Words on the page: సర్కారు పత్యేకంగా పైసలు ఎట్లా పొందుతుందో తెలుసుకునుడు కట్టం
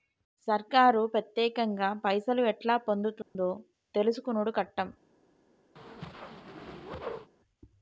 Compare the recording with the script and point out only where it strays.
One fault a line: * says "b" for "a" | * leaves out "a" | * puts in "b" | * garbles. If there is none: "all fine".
all fine